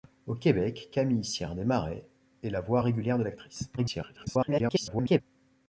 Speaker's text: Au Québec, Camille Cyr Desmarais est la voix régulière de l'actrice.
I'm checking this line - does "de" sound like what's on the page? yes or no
yes